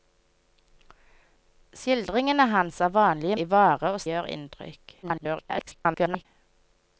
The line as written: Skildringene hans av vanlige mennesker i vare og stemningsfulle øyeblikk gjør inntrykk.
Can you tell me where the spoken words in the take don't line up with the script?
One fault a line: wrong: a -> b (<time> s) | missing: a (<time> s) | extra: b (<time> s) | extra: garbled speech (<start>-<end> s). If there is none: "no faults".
missing: mennesker (3.4 s)
missing: stemningsfulle øyeblikk (4.0 s)
extra: garbled speech (5.0-6.3 s)